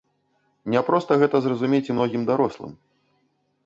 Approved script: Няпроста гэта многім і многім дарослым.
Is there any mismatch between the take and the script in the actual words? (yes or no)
yes